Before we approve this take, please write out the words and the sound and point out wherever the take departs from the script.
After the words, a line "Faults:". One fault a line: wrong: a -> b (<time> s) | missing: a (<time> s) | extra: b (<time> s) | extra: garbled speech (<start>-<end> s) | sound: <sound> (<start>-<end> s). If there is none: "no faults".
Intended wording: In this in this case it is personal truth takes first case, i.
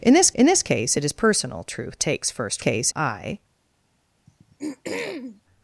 In this in this case it is personal truth takes first case, i.
Faults:
sound: throat clearing (4.3-5.4 s)